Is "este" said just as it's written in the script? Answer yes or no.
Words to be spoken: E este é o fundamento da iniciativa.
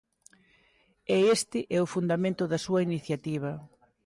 yes